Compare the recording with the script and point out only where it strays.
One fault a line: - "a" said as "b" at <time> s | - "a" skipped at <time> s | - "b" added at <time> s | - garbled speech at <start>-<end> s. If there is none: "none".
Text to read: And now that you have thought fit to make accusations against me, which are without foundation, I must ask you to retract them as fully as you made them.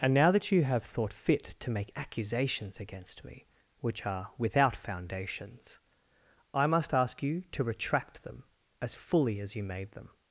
- "foundation" said as "foundations" at 4.8 s